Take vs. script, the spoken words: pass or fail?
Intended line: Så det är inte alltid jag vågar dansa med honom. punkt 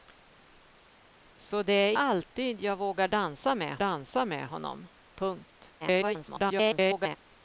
fail